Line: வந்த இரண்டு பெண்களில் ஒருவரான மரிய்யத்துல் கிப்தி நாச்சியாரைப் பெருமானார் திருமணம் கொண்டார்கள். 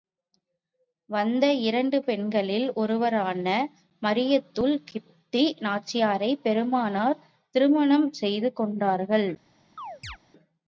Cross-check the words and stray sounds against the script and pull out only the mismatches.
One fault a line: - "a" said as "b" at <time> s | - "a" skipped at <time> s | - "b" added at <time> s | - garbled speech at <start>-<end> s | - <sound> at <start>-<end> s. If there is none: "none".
- "செய்து" added at 8.1 s
- chirp at 9.8-10.2 s